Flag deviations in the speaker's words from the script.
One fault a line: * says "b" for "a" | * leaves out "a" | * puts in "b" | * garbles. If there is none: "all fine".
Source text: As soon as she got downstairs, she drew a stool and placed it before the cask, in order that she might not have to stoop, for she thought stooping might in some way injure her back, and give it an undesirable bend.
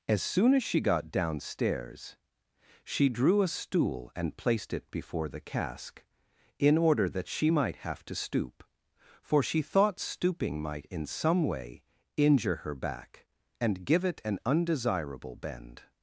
* leaves out "not"